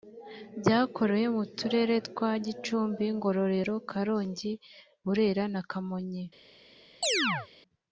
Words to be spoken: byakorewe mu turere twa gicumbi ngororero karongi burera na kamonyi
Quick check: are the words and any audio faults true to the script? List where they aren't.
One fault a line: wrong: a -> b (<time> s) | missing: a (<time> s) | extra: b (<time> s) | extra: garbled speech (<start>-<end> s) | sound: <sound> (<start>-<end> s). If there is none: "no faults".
sound: chirp (7.0-7.5 s)